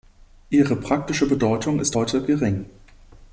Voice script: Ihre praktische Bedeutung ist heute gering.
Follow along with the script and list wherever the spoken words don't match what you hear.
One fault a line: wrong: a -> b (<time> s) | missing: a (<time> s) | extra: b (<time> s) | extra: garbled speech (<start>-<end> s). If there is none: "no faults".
no faults